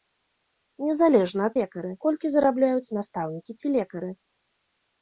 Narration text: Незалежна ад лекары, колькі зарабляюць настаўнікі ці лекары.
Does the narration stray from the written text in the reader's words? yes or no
no